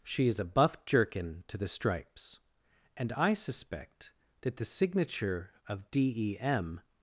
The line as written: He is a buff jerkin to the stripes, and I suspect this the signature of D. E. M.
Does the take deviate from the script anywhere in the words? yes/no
yes